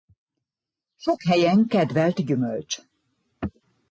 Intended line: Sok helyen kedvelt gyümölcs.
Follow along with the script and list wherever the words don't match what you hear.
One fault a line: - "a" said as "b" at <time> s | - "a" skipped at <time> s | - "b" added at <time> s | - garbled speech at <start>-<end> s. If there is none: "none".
none